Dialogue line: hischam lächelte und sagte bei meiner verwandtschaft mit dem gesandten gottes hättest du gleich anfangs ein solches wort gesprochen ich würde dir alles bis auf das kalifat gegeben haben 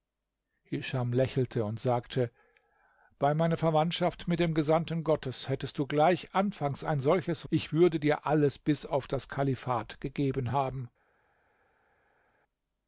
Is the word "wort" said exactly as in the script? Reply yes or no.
no